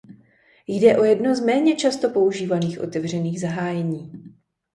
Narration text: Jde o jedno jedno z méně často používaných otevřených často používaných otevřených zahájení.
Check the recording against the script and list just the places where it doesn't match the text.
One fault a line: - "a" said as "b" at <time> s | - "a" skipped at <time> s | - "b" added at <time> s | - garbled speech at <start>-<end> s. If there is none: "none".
- "jedno" skipped at 1.4 s
- "často používaných otevřených" skipped at 3.4 s